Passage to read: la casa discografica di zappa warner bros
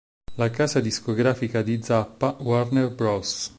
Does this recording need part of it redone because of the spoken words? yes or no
no